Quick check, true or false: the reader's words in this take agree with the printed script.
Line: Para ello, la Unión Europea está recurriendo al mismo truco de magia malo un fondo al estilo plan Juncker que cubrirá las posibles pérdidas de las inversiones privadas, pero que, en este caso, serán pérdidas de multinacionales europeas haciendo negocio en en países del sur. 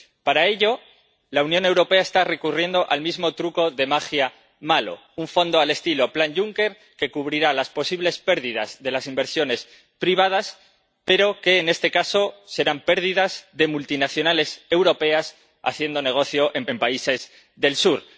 true